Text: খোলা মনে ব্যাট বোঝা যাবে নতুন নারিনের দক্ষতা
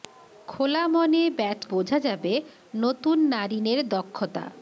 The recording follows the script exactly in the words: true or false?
true